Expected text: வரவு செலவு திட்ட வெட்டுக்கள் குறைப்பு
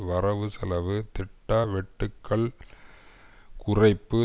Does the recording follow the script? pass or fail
pass